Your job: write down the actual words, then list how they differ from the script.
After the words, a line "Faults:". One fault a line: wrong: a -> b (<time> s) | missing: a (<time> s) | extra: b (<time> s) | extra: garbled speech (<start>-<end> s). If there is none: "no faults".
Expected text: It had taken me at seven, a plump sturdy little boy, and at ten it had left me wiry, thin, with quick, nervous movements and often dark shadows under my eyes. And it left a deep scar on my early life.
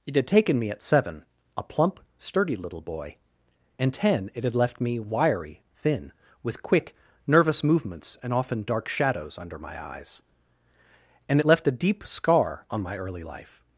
It had taken me at seven, a plump sturdy little boy, and ten it had left me wiry, thin, with quick, nervous movements and often dark shadows under my eyes. And it left a deep scar on my early life.
Faults:
missing: at (3.9 s)